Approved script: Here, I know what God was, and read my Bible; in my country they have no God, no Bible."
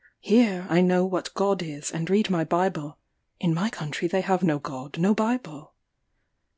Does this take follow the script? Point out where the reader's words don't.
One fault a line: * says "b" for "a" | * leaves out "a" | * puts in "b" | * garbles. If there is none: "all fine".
* says "is" for "was"